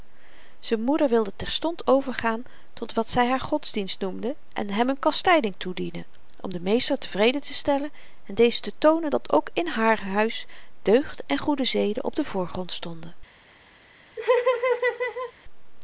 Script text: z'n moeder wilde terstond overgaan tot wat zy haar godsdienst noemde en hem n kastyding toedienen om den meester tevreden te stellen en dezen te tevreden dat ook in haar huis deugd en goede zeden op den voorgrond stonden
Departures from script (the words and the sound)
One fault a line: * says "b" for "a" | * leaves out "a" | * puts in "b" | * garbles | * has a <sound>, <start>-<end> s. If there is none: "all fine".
* says "toonen" for "tevreden"
* has a laugh, 14.2-15.3 s